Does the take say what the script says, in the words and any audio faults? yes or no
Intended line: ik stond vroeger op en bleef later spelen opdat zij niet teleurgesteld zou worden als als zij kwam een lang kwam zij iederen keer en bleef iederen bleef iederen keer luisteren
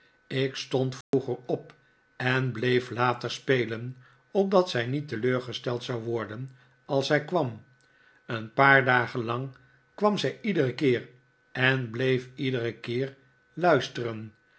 no